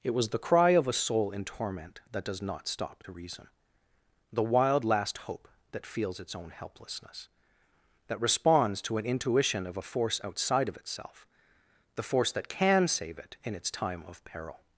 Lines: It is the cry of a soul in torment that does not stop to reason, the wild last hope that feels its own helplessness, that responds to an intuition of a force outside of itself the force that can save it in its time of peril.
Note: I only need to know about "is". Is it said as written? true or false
false